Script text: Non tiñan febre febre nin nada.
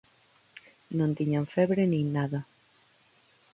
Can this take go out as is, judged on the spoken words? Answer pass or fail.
fail